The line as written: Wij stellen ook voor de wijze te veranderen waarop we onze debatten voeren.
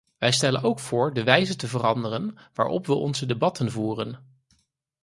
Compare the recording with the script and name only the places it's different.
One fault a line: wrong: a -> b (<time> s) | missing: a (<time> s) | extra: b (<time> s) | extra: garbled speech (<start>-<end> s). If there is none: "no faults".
no faults